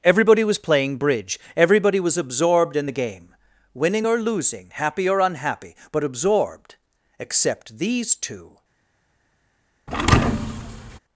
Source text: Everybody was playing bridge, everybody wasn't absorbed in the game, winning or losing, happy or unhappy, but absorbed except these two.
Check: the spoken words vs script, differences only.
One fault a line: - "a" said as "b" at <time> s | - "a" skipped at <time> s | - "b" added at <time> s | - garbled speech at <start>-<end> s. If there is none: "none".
- "wasn't" said as "was" at 2.0 s